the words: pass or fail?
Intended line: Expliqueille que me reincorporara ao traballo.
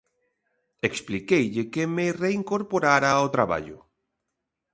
pass